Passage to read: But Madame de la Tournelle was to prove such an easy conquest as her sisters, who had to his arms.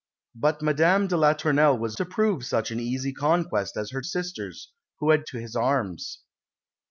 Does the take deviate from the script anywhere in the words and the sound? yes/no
no